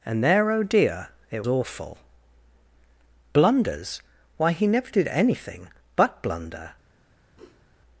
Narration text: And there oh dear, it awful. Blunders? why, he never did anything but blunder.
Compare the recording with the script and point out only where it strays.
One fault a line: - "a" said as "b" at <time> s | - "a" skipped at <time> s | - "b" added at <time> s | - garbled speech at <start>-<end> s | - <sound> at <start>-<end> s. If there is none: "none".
- sniff at 7.4-7.6 s